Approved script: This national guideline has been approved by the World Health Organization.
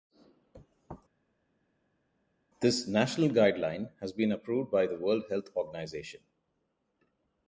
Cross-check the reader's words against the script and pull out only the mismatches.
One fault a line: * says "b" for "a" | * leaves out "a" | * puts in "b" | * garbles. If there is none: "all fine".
all fine